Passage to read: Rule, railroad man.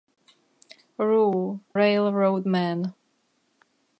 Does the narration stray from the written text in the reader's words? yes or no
no